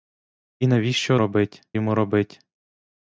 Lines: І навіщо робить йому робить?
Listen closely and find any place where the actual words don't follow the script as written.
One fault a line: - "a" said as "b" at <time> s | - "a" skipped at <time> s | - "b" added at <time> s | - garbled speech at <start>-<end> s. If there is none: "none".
none